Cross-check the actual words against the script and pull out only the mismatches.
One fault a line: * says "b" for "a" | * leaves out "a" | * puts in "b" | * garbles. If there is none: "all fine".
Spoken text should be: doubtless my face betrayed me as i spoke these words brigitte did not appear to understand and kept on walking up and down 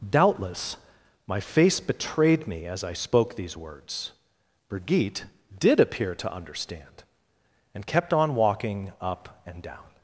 * leaves out "not"